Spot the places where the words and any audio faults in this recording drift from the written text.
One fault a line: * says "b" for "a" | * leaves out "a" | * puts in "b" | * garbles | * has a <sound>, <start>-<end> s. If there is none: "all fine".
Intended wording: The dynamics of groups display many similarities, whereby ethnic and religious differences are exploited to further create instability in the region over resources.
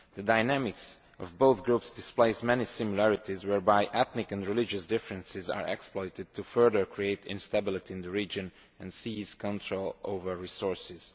* puts in "both"
* puts in "and seize control"